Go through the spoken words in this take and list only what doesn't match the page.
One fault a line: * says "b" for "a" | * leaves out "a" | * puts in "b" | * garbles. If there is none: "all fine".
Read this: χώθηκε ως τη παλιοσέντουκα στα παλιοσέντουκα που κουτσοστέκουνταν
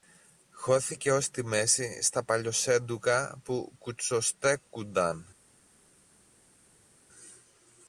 * says "μέση" for "παλιοσέντουκα"